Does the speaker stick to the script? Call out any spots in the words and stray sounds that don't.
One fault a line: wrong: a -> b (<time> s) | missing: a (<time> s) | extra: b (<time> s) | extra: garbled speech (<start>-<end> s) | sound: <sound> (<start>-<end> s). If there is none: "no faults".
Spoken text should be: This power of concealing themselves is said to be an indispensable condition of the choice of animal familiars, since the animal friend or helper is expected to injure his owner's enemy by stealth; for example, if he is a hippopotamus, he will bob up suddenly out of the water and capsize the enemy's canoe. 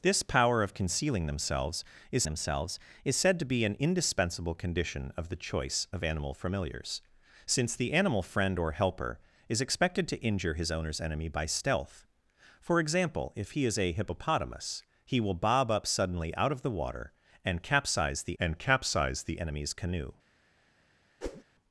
extra: themselves is (2.3 s)
extra: and capsize the (18.4 s)
sound: whoosh (21.2-21.4 s)